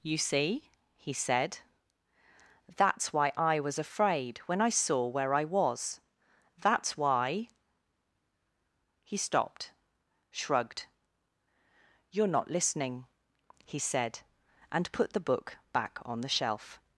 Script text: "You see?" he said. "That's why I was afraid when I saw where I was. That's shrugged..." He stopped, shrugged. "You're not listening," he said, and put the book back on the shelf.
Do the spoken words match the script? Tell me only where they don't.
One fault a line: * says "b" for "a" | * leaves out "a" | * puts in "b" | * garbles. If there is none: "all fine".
* says "why" for "shrugged"